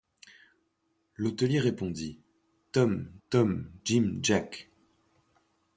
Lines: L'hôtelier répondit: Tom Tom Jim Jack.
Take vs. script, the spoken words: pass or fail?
pass